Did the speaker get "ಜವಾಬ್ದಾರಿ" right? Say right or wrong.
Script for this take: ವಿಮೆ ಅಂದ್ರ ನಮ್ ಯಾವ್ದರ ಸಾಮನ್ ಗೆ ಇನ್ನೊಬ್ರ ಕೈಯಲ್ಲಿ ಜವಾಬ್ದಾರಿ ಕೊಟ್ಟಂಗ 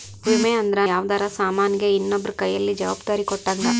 right